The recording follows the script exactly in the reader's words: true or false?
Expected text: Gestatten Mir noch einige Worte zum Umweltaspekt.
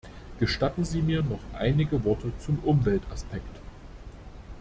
false